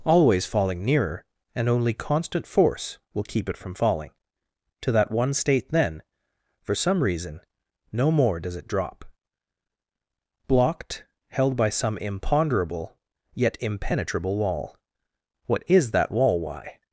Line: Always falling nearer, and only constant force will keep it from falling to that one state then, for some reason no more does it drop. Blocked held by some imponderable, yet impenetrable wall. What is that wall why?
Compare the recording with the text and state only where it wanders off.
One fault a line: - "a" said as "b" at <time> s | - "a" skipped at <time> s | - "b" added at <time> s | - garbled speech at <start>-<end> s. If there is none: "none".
none